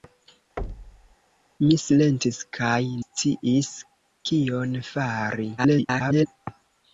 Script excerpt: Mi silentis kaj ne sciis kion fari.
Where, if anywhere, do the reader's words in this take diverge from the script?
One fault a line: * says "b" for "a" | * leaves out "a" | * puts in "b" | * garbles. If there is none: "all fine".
* leaves out "ne"
* garbles